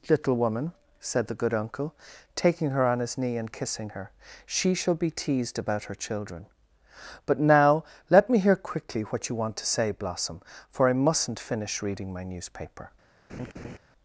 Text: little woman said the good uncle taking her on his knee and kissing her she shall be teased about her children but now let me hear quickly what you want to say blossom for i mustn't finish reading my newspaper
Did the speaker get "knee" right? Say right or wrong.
right